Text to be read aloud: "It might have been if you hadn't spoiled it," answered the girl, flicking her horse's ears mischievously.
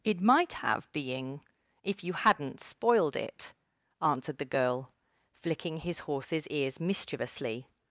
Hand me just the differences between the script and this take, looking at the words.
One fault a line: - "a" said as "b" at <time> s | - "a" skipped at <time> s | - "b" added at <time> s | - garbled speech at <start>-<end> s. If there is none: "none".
- "been" said as "being" at 0.9 s
- "her" said as "his" at 5.8 s